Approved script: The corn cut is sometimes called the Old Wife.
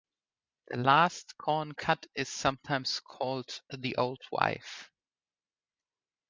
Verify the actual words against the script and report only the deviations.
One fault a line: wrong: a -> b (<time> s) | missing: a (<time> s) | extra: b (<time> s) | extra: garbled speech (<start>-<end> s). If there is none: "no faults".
extra: last (0.8 s)